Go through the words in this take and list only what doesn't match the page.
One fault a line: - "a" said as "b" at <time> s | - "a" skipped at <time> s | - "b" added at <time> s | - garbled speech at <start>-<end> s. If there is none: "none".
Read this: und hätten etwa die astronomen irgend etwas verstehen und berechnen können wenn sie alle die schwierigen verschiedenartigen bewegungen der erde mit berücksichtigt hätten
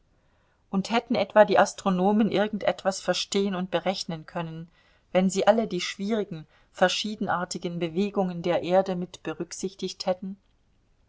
none